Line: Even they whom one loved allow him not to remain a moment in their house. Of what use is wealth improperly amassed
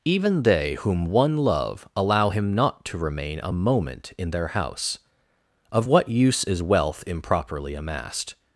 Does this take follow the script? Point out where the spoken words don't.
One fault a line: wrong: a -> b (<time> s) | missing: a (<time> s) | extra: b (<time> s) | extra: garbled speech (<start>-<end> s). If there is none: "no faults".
wrong: loved -> love (1.4 s)